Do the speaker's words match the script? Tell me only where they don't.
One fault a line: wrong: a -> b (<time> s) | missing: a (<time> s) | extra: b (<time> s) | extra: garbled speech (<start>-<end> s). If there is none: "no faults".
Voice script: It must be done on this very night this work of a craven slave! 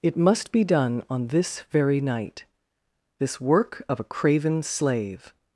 no faults